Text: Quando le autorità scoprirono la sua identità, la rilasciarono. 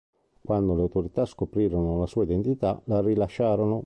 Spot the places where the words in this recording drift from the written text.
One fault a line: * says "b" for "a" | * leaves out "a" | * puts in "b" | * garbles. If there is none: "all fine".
all fine